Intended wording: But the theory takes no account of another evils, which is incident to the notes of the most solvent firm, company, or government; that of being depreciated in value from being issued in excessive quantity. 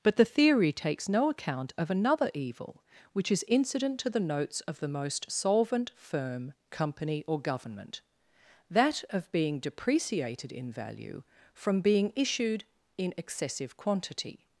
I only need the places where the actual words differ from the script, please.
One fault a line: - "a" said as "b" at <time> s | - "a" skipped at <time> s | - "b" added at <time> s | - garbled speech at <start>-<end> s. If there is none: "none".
- "evils" said as "evil" at 2.3 s